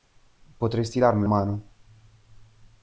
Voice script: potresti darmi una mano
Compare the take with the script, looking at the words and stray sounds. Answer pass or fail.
fail